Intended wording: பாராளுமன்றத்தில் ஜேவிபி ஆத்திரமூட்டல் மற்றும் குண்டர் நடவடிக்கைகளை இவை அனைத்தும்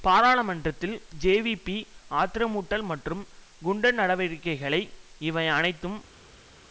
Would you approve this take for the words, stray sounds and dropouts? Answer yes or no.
yes